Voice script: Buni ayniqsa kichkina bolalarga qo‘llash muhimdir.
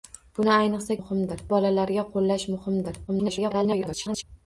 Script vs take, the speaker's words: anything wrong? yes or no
yes